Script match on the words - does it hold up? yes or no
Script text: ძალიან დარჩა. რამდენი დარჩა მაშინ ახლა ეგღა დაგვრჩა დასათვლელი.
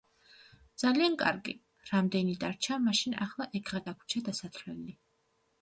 no